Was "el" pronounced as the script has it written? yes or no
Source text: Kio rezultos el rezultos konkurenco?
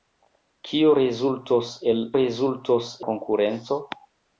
yes